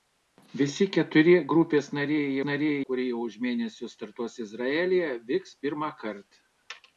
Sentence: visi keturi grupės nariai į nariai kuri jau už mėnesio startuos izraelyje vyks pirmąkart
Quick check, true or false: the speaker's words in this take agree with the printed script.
true